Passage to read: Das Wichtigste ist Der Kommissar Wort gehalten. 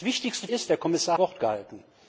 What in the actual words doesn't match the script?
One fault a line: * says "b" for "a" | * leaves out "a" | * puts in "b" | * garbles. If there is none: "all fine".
all fine